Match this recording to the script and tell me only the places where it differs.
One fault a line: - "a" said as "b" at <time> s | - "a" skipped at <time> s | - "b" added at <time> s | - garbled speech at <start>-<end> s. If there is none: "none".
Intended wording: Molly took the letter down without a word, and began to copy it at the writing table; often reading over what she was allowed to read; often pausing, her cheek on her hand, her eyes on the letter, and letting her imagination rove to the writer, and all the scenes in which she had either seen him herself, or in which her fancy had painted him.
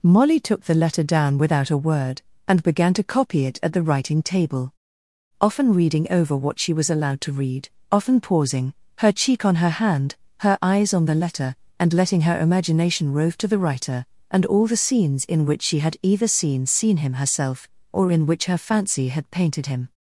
- "seen" added at 16.7 s